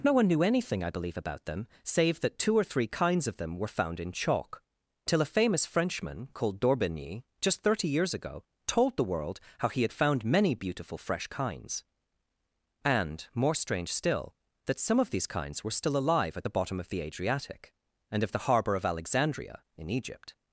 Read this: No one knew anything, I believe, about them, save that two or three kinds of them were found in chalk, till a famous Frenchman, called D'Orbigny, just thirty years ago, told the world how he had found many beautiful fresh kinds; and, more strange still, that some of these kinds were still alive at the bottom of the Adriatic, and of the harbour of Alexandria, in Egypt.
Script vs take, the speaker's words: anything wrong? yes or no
no